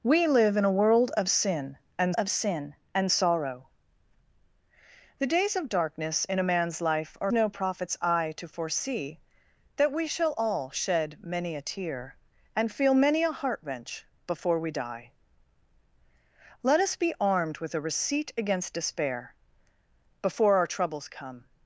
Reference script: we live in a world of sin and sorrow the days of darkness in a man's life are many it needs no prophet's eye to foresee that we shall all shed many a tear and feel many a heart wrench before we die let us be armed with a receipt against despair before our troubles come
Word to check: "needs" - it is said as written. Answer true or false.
false